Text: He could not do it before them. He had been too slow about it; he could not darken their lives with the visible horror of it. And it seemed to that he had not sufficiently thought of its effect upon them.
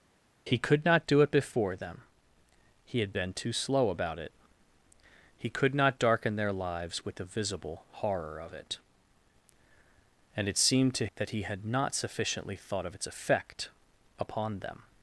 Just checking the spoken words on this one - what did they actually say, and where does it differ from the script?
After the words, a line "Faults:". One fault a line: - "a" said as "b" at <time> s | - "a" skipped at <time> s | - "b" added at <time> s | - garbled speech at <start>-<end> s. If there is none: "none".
He could not do it before them. He had been too slow about it; he could not darken their lives with the visible horror of it. And it seemed to that he had not sufficiently thought of its effect upon them.
Faults:
none